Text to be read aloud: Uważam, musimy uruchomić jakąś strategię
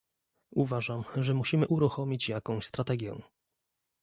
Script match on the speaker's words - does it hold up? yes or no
no